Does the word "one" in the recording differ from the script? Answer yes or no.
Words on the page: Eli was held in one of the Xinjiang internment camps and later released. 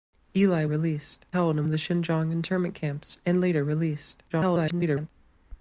yes